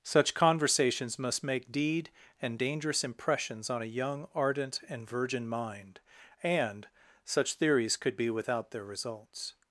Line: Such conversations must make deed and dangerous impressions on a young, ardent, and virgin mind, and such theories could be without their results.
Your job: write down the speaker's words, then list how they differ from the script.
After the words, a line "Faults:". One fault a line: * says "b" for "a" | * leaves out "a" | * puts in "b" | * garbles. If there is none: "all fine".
Such conversations must make deed and dangerous impressions on a young, ardent, and virgin mind, and such theories could be without their results.
Faults:
all fine